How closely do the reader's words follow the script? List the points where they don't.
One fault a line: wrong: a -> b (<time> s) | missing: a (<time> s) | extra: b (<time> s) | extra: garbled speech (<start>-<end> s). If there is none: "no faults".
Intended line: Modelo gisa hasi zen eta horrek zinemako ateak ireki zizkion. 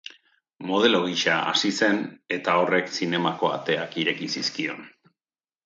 no faults